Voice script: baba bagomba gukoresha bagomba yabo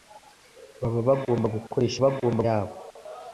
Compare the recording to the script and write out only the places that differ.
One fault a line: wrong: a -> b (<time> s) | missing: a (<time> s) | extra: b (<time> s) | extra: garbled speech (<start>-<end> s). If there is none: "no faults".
no faults